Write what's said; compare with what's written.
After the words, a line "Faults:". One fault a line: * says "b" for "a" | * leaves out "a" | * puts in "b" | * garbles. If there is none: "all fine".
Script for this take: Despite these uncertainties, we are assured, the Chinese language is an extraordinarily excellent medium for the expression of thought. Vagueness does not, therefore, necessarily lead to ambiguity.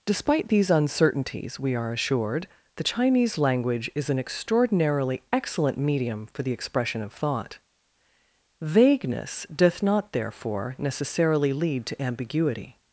Despite these uncertainties, we are assured, the Chinese language is an extraordinarily excellent medium for the expression of thought. Vagueness doth not, therefore, necessarily lead to ambiguity.
Faults:
* says "doth" for "does"